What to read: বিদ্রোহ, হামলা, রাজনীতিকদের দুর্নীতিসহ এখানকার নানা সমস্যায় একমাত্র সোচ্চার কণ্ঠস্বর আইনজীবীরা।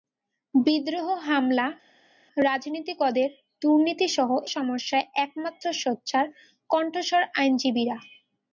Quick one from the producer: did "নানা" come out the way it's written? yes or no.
no